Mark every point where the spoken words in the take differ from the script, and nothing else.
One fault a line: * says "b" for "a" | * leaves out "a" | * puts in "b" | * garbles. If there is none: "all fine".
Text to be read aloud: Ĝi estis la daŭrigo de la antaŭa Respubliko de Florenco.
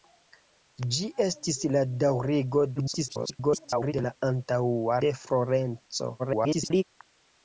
* garbles
* leaves out "Respubliko"
* garbles